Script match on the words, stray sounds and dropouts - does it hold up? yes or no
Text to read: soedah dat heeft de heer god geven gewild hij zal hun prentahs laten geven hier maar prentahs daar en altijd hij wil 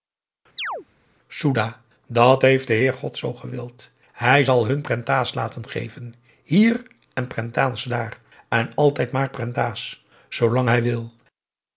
no